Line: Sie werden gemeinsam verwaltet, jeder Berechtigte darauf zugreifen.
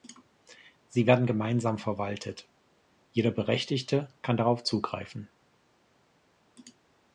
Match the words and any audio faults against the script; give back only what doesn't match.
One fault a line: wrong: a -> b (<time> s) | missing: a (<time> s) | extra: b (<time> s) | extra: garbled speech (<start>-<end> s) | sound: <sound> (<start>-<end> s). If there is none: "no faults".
extra: kann (4.2 s)